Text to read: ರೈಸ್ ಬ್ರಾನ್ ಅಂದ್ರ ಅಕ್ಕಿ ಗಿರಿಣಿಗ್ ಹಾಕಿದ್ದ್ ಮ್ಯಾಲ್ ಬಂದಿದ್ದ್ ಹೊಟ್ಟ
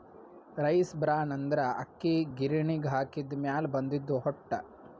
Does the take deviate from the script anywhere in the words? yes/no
no